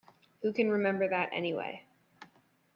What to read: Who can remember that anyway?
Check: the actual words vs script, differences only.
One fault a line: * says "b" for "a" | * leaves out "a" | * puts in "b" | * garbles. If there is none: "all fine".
all fine